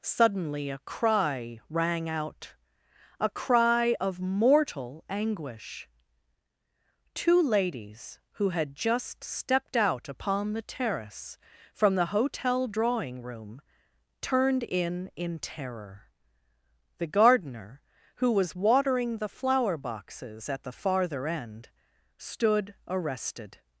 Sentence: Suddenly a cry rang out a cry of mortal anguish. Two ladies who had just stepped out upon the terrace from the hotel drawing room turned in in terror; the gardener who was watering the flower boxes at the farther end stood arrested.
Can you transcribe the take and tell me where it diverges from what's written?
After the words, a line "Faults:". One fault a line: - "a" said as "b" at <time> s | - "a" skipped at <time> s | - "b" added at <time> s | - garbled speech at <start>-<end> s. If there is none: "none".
Suddenly a cry rang out a cry of mortal anguish. Two ladies who had just stepped out upon the terrace from the hotel drawing room turned in in terror; the gardener who was watering the flower boxes at the farther end stood arrested.
Faults:
none